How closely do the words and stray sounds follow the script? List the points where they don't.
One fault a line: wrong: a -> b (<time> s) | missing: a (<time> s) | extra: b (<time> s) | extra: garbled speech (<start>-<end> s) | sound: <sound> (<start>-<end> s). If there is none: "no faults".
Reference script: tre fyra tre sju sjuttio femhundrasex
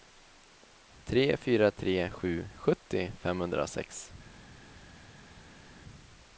no faults